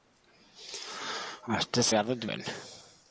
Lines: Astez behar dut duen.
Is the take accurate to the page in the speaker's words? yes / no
yes